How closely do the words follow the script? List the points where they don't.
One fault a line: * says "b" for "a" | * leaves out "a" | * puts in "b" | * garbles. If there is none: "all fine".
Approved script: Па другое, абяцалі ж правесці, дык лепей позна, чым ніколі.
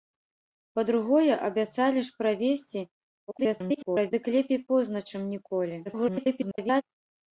* garbles
* garbles